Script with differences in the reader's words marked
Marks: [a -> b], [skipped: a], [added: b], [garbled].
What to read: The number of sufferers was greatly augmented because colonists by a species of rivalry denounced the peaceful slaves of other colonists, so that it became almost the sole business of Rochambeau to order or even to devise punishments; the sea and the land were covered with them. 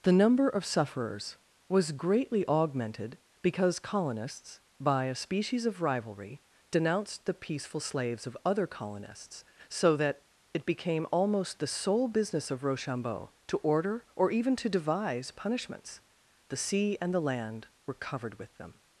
The number of sufferers was greatly augmented because colonists by a species of rivalry denounced the peaceful slaves of other colonists, so that it became almost the sole business of Rochambeau to order or even to devise punishments; the sea and the land were covered with them.